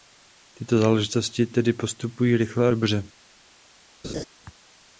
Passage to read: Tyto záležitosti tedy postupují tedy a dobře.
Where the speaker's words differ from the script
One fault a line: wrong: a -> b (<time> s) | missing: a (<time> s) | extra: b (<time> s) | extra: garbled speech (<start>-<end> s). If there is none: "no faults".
wrong: tedy -> rychle (2.4 s)